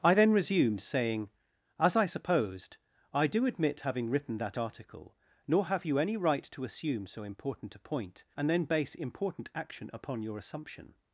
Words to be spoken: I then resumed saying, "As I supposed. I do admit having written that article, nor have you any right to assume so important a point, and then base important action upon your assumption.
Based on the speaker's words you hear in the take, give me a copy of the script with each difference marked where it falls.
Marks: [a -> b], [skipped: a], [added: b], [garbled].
I then resumed saying, "As I supposed. I do admit having written that article, nor have you any right to assume so important a point, and then base important action upon your assumption.